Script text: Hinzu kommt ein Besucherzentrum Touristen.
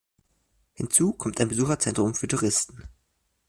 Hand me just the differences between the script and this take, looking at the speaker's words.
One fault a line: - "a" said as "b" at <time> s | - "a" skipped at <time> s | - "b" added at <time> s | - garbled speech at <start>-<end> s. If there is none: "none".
- "für" added at 2.1 s